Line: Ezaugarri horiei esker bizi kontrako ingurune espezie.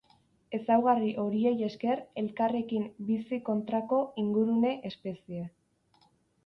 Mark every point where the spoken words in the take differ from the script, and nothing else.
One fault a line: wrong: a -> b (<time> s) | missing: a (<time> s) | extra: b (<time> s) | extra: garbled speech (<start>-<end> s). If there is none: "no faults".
extra: elkarrekin (2.2 s)